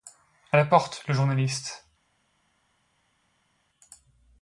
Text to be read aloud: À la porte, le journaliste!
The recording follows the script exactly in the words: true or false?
true